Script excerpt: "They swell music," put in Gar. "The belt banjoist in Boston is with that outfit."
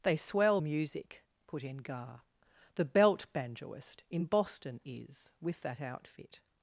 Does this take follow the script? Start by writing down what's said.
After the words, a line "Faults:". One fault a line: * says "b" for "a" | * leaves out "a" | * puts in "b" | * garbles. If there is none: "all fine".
"They swell music," put in Gar. "The belt banjoist in Boston is with that outfit."
Faults:
all fine